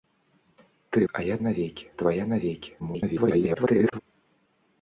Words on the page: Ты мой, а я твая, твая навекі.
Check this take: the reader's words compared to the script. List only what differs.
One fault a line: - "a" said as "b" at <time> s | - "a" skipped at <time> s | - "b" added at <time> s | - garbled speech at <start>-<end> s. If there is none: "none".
- "мой" skipped at 1.1 s
- "твая" said as "навекі" at 1.4 s
- garbled speech at 2.8-4.0 s